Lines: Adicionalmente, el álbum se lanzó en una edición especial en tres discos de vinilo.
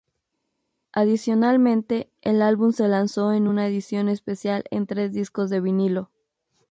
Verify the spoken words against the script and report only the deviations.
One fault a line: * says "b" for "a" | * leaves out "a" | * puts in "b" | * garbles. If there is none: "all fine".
all fine